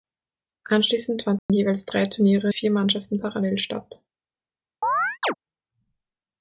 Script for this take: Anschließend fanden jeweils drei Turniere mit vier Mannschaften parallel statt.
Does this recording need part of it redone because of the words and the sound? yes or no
yes